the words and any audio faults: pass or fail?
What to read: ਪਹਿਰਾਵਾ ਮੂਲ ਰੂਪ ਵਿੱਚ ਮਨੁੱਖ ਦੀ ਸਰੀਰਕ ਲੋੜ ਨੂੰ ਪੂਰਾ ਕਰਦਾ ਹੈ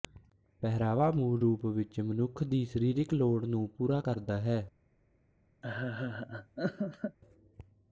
fail